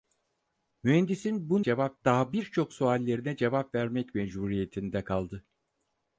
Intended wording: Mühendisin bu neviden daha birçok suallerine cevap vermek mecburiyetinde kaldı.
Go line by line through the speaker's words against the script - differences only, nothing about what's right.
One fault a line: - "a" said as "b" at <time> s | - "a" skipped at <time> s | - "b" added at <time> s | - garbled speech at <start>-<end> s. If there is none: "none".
- "neviden" said as "cevap" at 1.6 s